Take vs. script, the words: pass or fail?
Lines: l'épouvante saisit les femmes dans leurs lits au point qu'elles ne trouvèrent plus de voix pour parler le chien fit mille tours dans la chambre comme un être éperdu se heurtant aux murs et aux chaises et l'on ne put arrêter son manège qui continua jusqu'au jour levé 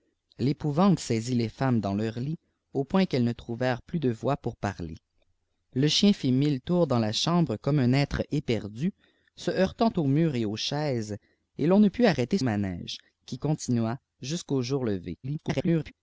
fail